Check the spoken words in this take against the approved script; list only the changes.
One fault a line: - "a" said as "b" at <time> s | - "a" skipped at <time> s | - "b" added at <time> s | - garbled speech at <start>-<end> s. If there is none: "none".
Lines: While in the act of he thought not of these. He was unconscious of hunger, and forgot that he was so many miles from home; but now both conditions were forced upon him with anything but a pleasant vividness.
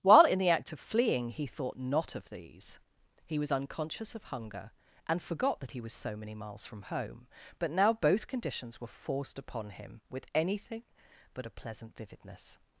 - "fleeing" added at 0.8 s